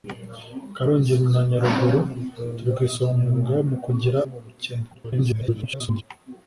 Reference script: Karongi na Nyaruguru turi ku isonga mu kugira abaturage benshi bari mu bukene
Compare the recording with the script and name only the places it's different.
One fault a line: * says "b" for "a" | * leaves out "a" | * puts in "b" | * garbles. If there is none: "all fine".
* leaves out "abaturage benshi bari"
* garbles